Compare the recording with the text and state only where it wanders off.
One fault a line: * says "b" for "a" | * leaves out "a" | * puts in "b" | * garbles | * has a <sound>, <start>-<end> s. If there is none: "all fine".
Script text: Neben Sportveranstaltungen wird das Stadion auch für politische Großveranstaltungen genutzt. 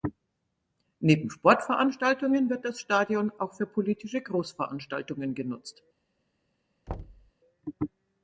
* has a thud, 6.9-7.3 s